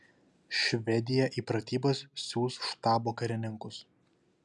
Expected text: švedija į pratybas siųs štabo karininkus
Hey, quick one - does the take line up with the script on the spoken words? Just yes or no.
yes